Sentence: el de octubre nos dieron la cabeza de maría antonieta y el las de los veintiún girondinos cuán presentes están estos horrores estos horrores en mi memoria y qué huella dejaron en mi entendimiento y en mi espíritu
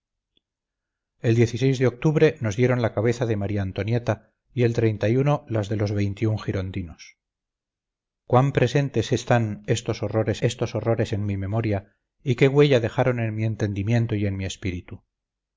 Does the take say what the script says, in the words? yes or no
yes